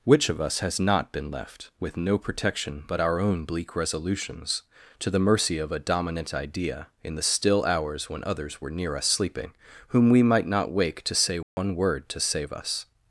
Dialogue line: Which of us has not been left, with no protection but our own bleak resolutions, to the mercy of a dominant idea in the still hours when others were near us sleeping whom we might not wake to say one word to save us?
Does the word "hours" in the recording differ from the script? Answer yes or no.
no